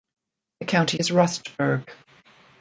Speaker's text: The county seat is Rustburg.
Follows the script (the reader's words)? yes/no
no